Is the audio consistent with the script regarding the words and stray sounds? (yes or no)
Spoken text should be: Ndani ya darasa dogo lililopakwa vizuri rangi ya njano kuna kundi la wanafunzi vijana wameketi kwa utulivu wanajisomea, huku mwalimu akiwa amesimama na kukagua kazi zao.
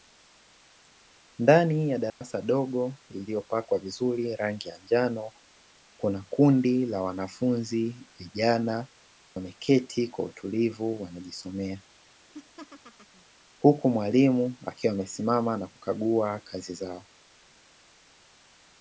no